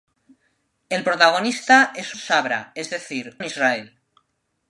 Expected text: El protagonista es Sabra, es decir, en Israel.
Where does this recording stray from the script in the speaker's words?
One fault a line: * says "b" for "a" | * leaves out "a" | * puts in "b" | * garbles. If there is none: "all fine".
all fine